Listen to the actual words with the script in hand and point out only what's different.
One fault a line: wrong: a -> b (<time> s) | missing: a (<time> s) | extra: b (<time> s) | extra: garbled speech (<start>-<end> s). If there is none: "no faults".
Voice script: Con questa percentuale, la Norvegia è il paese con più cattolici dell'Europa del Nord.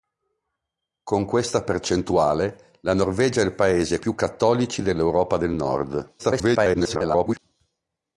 missing: con (4.0 s)
extra: garbled speech (6.2-7.4 s)